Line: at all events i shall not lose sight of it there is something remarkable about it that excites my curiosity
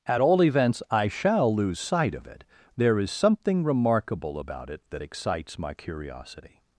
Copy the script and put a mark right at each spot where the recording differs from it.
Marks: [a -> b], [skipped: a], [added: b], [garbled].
at all events i shall [skipped: not] lose sight of it there is something remarkable about it that excites my curiosity